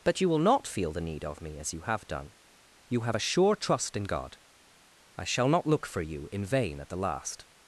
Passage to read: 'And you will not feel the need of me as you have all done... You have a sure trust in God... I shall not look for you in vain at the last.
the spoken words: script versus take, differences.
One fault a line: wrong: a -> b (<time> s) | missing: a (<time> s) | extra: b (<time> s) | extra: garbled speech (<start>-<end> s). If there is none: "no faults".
wrong: And -> But (0.0 s)
missing: all (2.1 s)